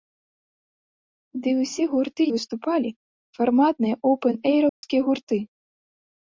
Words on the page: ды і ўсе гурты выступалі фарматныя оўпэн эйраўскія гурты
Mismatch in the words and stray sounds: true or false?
true